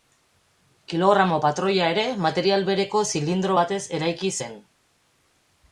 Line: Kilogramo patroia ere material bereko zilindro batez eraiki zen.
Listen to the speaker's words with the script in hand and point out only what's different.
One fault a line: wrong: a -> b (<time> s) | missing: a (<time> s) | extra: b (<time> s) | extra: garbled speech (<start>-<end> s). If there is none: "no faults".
no faults